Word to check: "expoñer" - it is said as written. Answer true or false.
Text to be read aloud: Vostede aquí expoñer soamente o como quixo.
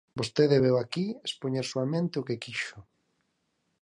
true